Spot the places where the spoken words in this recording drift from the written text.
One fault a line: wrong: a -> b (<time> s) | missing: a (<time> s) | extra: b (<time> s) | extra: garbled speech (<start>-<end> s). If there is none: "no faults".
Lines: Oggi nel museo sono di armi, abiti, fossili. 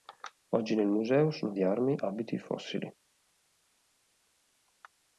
no faults